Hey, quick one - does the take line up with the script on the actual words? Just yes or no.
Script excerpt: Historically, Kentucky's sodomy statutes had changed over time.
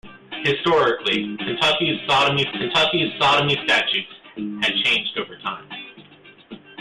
no